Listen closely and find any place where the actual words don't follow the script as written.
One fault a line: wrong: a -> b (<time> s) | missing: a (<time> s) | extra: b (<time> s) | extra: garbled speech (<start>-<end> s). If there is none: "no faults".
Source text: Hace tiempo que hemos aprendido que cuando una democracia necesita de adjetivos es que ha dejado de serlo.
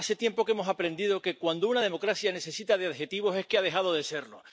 no faults